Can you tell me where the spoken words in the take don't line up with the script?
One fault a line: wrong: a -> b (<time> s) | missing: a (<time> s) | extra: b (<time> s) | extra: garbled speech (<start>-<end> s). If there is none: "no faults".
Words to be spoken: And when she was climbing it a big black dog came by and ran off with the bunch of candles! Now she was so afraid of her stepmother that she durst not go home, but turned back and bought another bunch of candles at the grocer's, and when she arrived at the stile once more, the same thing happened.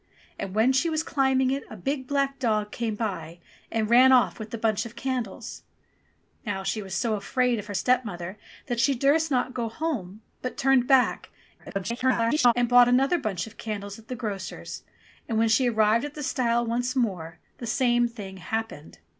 extra: garbled speech (11.6-12.5 s)